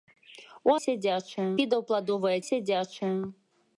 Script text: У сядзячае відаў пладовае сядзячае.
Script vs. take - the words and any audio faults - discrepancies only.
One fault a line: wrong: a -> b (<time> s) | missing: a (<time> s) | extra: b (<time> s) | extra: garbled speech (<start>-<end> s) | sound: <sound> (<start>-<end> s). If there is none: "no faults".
no faults